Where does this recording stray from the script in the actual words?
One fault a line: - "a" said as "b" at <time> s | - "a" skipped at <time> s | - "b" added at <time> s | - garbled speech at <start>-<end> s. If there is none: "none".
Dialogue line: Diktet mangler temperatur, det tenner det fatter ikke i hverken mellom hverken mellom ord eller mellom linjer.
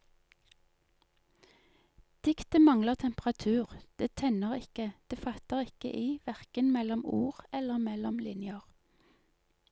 - "ikke" added at 4.6 s
- "hverken mellom" skipped at 7.0 s